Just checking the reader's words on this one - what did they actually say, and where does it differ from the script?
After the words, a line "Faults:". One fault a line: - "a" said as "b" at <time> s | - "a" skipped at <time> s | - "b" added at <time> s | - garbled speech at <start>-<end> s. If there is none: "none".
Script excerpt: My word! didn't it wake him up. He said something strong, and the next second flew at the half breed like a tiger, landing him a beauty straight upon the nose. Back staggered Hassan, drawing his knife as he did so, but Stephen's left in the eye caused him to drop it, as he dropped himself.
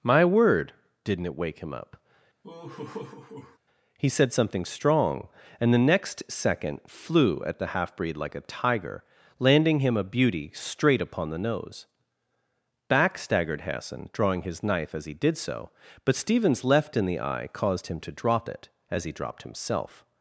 My word! didn't it wake him up. He said something strong, and the next second flew at the half breed like a tiger, landing him a beauty straight upon the nose. Back staggered Hassan, drawing his knife as he did so, but Stephen's left in the eye caused him to drop it, as he dropped himself.
Faults:
none